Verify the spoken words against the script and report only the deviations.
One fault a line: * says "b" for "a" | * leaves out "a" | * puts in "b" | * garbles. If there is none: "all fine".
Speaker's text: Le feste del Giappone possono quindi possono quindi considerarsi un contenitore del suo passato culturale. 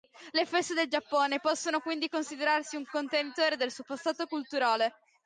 * leaves out "possono quindi"